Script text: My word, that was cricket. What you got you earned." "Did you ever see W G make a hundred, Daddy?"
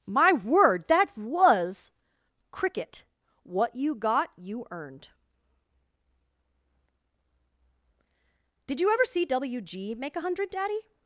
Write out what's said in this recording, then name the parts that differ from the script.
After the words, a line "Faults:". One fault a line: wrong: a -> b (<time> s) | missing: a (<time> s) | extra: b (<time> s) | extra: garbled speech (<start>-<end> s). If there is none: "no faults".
My word, that was cricket. What you got you earned." "Did you ever see W G make a hundred, Daddy?"
Faults:
no faults